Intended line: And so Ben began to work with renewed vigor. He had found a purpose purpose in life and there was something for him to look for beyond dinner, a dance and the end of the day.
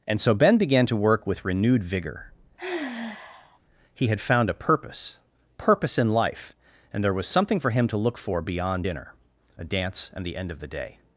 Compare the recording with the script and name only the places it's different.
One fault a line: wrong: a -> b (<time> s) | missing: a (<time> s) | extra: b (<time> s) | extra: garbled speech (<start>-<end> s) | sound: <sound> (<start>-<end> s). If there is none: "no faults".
sound: sigh (2.6-3.6 s)